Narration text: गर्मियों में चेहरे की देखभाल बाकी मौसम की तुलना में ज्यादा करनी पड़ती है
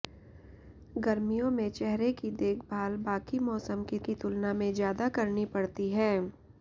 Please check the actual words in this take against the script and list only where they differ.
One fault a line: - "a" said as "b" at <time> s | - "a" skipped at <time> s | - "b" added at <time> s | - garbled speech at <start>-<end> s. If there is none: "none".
- "की" added at 4.1 s